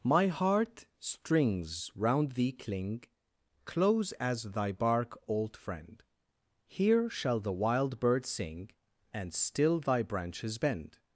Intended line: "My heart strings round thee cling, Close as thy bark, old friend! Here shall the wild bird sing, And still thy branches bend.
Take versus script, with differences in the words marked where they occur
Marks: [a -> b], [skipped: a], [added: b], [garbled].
"My heart strings round thee cling, Close as thy bark, old friend! Here shall the wild bird sing, And still thy branches bend.